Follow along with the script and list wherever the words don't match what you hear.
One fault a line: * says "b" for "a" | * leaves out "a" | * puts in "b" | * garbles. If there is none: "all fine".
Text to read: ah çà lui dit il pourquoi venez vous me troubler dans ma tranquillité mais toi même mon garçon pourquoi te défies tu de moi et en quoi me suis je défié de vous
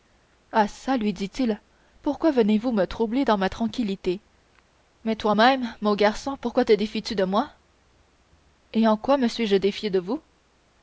all fine